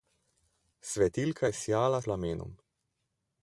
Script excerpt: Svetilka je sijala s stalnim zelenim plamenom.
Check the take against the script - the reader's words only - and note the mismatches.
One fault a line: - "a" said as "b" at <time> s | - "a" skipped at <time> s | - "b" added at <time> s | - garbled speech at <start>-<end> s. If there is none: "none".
- "s stalnim zelenim" skipped at 2.0 s